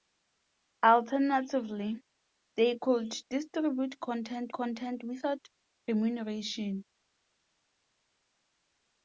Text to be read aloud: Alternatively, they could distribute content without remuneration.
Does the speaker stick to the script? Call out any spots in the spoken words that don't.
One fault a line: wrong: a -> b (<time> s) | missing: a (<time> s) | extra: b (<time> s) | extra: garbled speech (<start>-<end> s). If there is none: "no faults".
extra: content (4.5 s)